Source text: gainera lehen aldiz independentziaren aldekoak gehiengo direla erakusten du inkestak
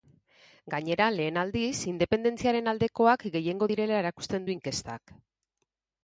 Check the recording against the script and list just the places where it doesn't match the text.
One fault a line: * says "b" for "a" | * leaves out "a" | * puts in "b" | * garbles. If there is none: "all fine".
all fine